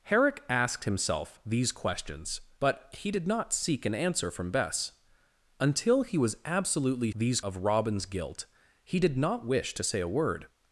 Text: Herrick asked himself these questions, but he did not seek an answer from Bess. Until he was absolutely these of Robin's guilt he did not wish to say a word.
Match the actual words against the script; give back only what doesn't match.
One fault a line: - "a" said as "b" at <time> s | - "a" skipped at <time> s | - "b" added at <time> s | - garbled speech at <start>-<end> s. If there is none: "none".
none